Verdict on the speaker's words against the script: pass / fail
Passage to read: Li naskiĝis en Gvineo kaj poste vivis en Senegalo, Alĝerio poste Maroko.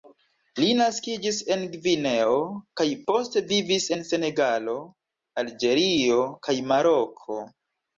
fail